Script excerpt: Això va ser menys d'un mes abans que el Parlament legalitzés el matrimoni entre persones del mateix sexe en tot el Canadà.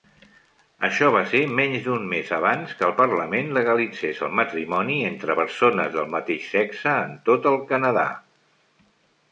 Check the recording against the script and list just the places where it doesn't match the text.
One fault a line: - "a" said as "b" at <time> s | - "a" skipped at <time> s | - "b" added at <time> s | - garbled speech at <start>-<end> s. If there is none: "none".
none